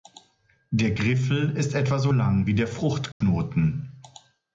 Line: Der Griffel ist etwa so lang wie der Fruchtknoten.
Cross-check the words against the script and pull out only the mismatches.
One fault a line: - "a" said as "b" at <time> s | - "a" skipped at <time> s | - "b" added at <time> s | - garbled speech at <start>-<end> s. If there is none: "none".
none